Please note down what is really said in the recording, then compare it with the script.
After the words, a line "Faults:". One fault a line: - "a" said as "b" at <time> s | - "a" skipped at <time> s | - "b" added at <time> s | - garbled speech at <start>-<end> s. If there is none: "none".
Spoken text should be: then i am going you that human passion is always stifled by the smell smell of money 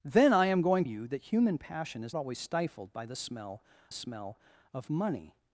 then i am going you that human passion is always stifled by the smell smell of money
Faults:
none